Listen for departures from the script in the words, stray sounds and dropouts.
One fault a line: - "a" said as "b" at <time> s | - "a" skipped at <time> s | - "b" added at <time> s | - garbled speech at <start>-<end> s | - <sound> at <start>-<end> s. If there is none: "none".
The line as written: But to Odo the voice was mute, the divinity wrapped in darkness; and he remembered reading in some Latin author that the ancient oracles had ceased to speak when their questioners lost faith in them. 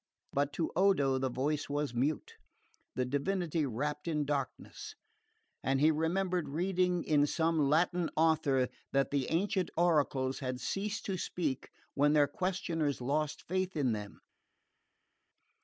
none